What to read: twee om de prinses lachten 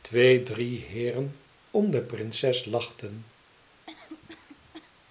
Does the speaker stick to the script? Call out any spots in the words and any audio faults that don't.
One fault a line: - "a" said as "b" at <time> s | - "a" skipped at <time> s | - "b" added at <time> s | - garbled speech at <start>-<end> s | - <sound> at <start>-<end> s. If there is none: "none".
- "drie heeren" added at 0.4 s
- cough at 3.9-4.9 s